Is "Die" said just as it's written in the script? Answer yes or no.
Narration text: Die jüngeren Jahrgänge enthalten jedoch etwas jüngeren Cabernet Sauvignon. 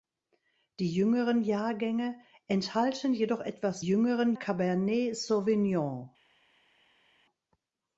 yes